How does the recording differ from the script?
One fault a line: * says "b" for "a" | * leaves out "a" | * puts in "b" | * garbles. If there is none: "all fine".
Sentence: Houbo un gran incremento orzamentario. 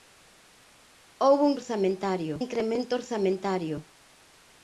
* says "orzamentario" for "gran"